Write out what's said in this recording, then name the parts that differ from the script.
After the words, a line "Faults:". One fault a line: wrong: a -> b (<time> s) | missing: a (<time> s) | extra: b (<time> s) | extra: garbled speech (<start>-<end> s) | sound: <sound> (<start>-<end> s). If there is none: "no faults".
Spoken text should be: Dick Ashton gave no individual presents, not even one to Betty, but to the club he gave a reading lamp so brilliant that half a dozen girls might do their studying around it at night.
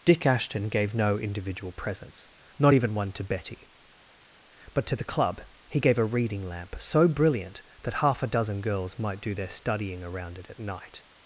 Dick Ashton gave no individual presents, not even one to Betty, but to the club he gave a reading lamp so brilliant that half a dozen girls might do their studying around it at night.
Faults:
no faults